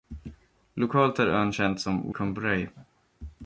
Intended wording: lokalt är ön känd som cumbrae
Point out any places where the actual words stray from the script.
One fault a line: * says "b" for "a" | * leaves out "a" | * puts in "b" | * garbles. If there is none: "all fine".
all fine